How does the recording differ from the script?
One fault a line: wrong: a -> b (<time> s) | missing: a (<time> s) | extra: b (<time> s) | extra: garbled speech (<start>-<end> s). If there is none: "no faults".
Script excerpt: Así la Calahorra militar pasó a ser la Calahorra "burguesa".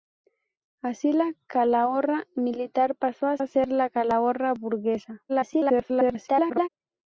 extra: a (3.4 s)
extra: garbled speech (5.3-6.7 s)